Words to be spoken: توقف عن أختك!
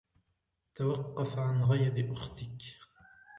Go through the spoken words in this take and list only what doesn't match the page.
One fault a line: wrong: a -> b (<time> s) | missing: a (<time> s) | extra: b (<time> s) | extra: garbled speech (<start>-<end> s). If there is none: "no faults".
extra: غيظ (1.6 s)